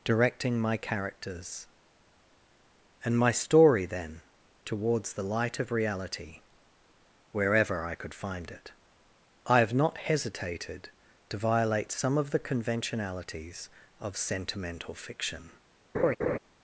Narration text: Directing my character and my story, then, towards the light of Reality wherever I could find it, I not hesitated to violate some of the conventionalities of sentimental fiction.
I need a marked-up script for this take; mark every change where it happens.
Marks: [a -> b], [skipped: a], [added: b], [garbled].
Directing my [character -> characters] and my story, then, towards the light of Reality wherever I could find it, I [added: have] not hesitated to violate some of the conventionalities of sentimental fiction.